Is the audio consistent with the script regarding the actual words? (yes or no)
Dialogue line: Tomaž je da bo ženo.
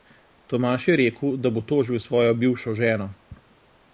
no